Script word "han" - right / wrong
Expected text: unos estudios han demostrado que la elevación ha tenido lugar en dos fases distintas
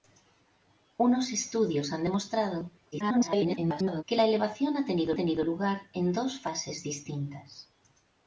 right